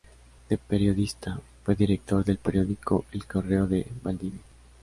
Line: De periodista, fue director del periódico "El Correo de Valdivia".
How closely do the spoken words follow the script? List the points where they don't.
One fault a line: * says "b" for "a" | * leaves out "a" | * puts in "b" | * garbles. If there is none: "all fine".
all fine